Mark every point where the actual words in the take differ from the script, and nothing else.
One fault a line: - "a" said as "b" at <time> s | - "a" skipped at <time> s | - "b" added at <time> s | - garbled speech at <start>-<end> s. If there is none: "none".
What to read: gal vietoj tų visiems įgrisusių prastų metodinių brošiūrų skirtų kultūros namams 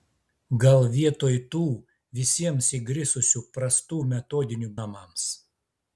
- "brošiūrų skirtų kultūros" skipped at 4.7 s